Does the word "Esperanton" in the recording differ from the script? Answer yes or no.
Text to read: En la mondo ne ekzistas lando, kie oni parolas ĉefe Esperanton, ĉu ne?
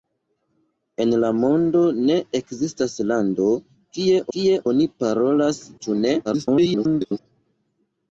yes